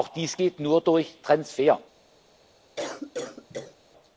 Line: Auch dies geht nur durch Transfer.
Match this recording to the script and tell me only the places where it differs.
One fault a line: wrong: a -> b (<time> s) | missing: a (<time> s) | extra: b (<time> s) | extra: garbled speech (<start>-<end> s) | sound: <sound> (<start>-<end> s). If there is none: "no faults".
sound: cough (2.8-3.8 s)